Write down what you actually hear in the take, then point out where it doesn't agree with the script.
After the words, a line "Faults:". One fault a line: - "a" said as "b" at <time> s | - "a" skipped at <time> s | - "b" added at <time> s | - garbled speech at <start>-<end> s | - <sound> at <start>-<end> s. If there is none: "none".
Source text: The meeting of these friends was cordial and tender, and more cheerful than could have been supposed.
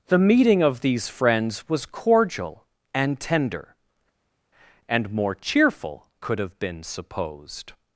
The meeting of these friends was cordial and tender, and more cheerful could have been supposed.
Faults:
- "than" skipped at 6.1 s